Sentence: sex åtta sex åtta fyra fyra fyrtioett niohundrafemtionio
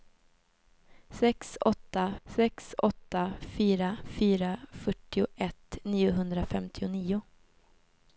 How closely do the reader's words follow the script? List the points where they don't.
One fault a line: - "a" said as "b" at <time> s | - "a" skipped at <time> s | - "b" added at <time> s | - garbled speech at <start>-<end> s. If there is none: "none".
none